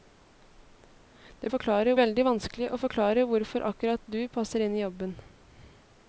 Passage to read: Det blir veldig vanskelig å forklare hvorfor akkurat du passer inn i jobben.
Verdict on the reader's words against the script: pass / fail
fail